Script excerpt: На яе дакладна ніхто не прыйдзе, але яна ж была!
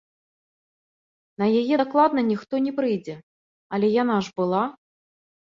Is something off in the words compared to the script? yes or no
no